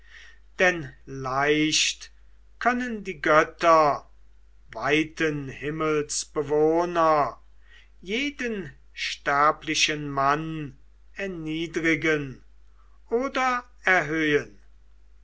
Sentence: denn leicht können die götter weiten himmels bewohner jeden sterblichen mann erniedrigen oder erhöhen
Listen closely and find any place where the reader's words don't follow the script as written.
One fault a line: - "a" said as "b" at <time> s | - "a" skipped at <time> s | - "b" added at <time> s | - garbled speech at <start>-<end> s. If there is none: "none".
none